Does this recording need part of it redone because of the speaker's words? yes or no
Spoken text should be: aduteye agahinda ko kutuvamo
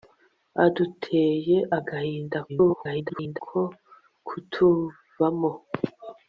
yes